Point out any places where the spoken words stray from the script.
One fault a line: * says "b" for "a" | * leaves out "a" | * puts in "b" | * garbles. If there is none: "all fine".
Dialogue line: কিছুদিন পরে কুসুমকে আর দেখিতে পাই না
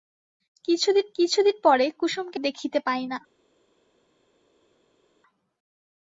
* puts in "কিছুদিন"
* leaves out "আর"